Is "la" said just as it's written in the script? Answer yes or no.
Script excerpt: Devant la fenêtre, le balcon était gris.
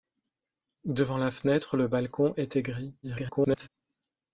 yes